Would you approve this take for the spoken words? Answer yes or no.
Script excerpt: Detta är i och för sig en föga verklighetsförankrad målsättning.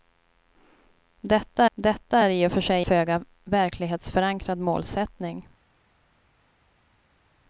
no